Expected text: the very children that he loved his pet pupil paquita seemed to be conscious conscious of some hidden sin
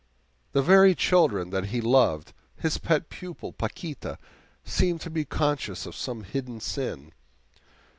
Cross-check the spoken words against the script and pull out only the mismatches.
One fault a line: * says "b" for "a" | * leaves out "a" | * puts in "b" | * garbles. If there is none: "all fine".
* leaves out "conscious"